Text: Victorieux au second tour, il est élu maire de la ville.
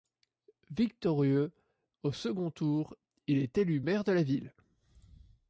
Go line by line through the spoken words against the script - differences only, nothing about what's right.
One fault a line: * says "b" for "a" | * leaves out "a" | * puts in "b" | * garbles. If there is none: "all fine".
all fine